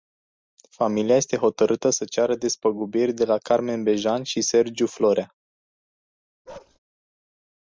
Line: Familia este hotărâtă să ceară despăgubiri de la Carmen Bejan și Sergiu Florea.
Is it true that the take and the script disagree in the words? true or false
false